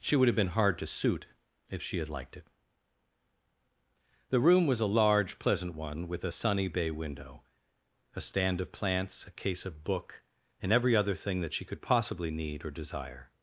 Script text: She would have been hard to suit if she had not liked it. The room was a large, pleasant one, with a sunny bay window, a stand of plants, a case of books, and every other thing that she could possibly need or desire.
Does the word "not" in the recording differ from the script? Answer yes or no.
yes